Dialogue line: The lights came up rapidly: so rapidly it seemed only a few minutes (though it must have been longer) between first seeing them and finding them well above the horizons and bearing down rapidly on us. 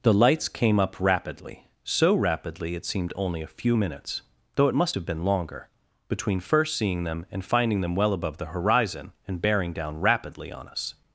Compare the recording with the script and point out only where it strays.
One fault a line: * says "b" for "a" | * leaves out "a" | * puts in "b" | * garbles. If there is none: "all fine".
* says "horizon" for "horizons"